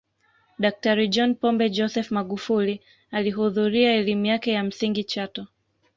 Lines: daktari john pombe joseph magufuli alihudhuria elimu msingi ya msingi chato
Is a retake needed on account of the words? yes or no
yes